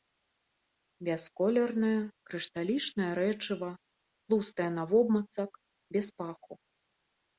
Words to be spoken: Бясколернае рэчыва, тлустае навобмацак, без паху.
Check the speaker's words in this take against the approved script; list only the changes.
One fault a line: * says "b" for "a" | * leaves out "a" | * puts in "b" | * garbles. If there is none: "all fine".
* puts in "крышталічнае"